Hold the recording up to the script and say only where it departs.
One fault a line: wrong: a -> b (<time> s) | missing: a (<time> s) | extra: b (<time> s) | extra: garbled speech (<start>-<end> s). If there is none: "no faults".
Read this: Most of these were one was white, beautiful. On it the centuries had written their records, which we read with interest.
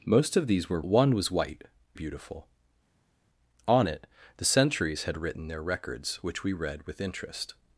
no faults